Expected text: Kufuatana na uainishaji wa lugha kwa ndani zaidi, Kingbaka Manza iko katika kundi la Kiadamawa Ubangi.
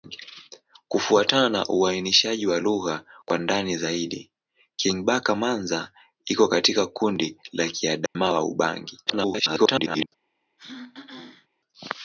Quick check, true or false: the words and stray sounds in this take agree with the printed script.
false